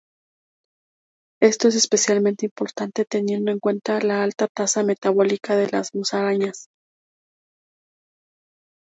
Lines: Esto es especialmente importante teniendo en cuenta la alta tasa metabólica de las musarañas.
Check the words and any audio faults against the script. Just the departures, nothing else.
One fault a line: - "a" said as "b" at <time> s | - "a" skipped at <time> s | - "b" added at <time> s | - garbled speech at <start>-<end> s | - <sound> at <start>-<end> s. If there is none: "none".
none